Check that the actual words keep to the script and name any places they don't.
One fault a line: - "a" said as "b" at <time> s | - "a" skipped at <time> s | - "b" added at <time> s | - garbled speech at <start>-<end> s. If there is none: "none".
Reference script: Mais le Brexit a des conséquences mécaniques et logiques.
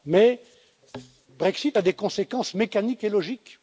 - "le" skipped at 0.4 s